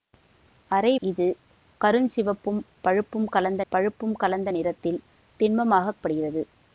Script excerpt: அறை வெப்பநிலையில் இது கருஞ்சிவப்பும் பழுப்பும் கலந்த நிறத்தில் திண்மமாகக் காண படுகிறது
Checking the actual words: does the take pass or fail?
fail